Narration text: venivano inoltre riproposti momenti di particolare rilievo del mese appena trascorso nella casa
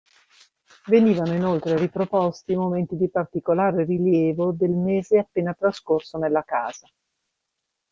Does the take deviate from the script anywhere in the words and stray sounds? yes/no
no